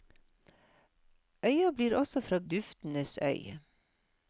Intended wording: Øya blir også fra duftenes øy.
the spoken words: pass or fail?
pass